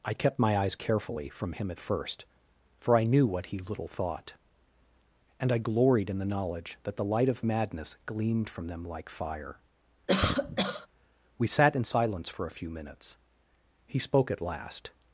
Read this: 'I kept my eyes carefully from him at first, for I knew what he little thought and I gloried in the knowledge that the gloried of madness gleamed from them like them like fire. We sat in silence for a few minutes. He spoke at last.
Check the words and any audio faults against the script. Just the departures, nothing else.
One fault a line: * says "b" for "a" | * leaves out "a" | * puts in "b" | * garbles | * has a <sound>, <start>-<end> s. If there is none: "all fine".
* says "light" for "gloried"
* leaves out "them like"
* has a cough, 10.1-10.9 s